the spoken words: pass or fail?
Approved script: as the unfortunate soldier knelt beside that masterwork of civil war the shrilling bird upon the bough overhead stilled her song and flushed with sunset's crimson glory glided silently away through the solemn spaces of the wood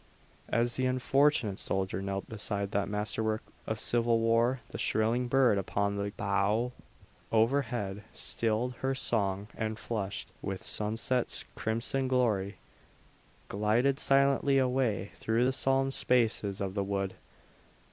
pass